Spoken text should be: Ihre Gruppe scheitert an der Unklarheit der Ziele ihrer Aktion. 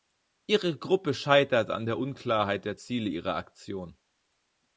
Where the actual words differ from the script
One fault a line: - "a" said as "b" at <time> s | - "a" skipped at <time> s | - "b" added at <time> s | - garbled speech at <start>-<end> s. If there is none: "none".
none